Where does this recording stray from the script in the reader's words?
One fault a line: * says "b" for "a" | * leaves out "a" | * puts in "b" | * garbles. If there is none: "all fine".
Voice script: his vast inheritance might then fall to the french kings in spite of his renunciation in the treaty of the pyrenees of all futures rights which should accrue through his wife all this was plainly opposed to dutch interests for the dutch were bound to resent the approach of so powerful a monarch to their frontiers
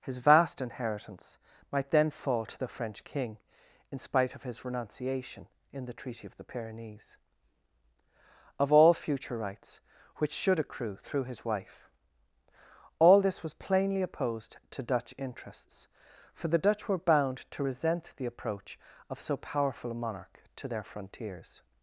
* says "king" for "kings"
* says "future" for "futures"